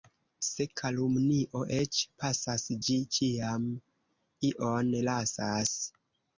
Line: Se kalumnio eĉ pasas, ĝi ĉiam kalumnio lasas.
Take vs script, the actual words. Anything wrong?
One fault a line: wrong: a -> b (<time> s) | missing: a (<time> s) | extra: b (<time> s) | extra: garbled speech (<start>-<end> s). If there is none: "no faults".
wrong: kalumnio -> ion (4.5 s)